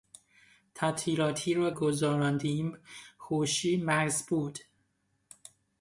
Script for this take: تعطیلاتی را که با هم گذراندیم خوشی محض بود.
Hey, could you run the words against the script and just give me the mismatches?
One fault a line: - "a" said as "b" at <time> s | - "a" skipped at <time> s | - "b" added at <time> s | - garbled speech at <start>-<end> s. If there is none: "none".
- "که با هم" skipped at 1.7 s